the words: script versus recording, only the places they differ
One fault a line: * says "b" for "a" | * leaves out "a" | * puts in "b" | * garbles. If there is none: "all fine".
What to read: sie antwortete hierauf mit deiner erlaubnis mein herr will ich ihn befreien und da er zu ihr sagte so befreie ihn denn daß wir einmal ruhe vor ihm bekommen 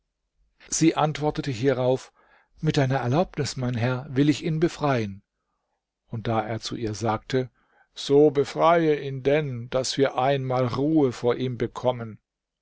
all fine